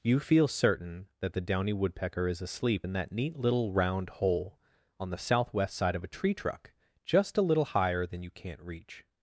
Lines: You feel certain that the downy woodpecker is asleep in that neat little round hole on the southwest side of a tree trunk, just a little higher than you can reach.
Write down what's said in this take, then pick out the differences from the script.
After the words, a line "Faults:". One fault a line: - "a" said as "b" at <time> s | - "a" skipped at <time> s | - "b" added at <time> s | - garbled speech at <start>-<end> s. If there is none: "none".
You feel certain that the downy woodpecker is asleep in that neat little round hole on the southwest side of a tree truck, just a little higher than you can't reach.
Faults:
- "trunk" said as "truck" at 6.3 s
- "can" said as "can't" at 8.3 s